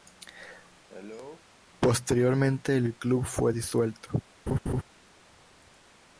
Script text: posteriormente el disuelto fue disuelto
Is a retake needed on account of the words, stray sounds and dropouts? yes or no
yes